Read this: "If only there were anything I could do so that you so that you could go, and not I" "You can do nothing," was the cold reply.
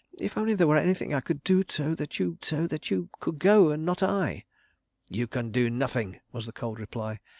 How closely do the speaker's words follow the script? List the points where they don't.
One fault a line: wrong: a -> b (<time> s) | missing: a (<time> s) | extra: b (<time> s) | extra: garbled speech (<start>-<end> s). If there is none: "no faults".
no faults